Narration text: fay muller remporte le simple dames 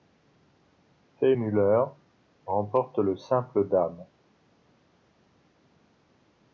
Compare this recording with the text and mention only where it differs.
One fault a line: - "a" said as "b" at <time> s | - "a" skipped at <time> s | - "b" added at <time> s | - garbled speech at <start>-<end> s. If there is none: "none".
none